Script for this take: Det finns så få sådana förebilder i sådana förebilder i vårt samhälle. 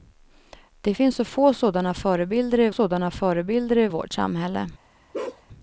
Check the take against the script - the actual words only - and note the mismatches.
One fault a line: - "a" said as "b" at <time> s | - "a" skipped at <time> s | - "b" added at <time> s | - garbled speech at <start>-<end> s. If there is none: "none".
none